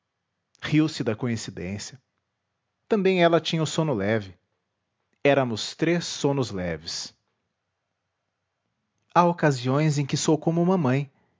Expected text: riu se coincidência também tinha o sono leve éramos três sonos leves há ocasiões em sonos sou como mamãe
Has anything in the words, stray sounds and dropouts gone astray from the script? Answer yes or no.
yes